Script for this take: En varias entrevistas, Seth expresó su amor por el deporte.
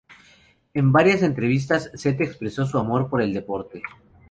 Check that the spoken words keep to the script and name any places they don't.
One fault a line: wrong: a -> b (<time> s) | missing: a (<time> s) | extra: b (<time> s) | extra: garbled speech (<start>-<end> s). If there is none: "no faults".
no faults